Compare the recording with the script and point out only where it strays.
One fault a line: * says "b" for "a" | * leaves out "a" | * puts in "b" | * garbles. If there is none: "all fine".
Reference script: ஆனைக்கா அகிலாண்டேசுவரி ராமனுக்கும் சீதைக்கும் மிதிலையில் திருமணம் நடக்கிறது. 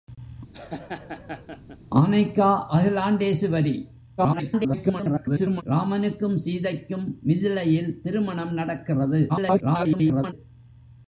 * garbles
* garbles